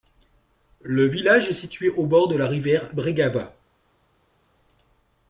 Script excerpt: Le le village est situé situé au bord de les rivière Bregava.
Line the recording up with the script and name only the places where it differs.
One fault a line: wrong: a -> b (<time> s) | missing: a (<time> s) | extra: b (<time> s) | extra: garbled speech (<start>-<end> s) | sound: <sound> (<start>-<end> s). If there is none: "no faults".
missing: le (1.1 s)
missing: situé (1.9 s)
wrong: les -> la (2.4 s)